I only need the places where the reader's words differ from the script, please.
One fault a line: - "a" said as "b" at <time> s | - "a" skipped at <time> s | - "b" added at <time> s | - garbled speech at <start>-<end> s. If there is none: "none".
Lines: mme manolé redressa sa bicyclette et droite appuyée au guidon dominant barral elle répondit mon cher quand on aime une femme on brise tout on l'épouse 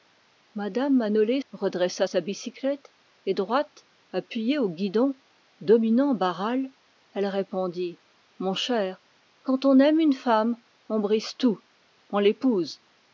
none